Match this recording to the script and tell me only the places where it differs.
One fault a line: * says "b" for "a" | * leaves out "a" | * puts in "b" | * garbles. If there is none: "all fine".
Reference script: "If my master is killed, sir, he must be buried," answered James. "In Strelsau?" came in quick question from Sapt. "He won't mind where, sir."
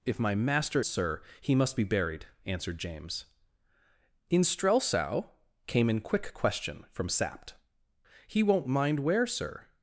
* leaves out "is killed"